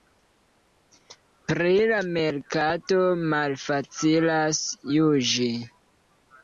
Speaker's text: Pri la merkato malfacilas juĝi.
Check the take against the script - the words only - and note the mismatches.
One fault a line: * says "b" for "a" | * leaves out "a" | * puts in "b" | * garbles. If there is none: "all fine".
all fine